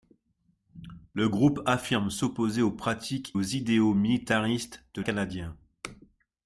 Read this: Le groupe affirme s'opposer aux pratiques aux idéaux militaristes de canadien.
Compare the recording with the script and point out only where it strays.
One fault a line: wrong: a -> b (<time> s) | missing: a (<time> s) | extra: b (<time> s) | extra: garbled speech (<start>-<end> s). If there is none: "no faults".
no faults